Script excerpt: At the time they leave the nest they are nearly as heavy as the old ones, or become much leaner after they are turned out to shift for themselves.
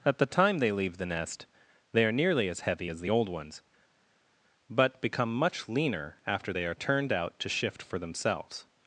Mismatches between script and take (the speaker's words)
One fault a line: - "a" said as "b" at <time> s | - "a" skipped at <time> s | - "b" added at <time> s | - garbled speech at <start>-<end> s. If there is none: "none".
- "or" said as "but" at 4.7 s